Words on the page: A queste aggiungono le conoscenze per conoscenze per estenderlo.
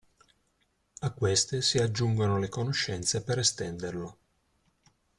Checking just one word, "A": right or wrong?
right